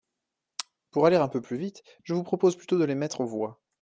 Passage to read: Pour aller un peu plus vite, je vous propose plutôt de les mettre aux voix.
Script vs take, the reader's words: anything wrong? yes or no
no